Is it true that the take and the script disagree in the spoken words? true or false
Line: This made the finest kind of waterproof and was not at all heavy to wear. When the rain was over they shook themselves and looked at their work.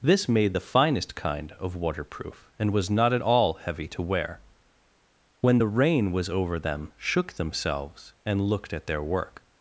true